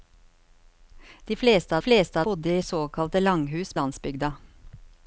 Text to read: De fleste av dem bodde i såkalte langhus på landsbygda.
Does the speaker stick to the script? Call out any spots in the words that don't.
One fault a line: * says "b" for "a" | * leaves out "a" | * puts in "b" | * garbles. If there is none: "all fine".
* says "fleste" for "dem"
* leaves out "på"